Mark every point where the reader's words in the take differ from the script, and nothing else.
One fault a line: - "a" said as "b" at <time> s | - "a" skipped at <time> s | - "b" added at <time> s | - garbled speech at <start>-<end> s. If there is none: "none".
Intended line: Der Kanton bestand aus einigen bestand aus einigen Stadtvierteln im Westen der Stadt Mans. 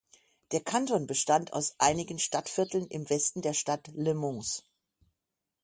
- "bestand aus einigen" skipped at 2.2 s
- "Le" added at 3.9 s